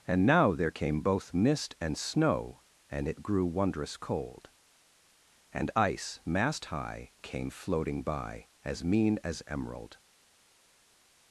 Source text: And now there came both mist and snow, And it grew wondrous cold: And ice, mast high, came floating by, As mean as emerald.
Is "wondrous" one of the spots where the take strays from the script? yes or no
no